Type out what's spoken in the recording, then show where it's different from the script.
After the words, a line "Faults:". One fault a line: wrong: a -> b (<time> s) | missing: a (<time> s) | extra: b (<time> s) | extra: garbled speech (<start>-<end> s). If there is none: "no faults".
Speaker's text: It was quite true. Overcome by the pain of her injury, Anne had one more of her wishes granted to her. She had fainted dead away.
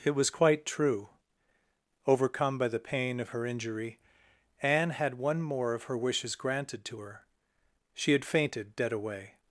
It was quite true. Overcome by the pain of her injury, Anne had one more of her wishes granted to her. She had fainted dead away.
Faults:
no faults